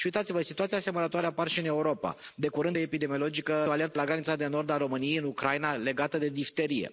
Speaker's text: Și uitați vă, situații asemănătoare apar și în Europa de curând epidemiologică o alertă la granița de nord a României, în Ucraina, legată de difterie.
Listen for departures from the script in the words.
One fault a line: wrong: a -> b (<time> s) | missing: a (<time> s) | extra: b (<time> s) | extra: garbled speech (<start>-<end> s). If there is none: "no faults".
no faults